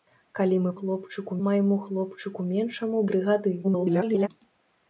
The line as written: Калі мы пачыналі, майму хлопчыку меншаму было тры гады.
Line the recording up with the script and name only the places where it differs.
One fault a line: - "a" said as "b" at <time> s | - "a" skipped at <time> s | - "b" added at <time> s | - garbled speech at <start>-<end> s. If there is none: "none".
- "пачыналі" said as "хлопчыку" at 0.8 s
- "было" skipped at 3.0 s
- garbled speech at 3.6-4.3 s